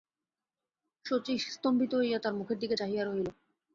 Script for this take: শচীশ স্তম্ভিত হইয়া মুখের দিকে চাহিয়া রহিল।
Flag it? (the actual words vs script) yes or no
yes